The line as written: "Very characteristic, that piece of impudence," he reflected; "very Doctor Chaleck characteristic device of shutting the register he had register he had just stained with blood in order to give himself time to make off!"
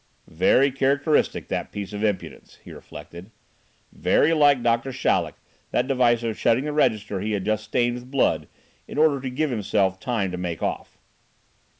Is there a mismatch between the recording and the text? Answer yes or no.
yes